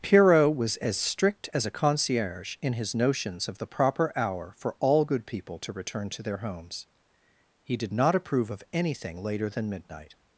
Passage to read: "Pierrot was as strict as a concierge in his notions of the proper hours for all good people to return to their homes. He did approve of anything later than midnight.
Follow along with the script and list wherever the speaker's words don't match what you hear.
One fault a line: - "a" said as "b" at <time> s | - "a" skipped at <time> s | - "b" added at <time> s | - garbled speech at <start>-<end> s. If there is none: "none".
- "hours" said as "hour" at 4.2 s
- "not" added at 7.9 s